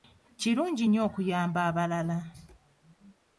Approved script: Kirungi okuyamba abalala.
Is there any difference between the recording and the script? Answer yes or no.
yes